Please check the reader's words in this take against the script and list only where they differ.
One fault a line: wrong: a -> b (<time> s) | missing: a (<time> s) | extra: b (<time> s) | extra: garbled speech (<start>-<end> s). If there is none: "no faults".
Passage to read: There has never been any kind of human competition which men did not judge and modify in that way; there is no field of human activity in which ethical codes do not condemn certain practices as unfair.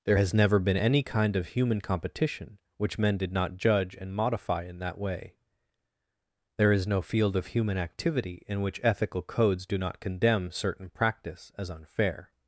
wrong: practices -> practice (10.9 s)